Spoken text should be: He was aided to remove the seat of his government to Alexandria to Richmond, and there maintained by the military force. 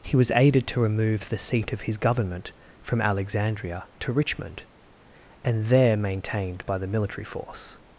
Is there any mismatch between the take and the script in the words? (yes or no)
yes